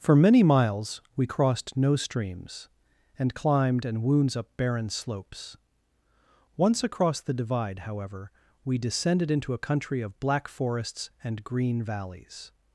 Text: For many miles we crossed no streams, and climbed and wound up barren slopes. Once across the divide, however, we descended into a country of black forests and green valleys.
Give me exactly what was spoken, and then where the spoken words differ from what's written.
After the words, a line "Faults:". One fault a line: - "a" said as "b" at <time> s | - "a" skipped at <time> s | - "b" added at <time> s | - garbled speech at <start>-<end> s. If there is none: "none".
For many miles we crossed no streams, and climbed and wounds up barren slopes. Once across the divide, however, we descended into a country of black forests and green valleys.
Faults:
- "wound" said as "wounds" at 4.0 s